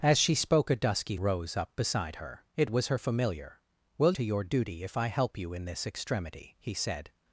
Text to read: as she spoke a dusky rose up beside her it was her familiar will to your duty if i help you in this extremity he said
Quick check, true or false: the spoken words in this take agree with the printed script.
true